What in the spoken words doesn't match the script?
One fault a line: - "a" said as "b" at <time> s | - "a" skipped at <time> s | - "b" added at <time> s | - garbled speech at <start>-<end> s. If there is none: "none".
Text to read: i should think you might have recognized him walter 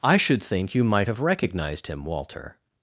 none